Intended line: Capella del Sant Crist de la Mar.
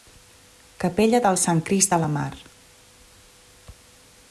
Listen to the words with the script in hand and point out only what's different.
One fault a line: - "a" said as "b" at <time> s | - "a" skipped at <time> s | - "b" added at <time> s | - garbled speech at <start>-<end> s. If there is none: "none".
none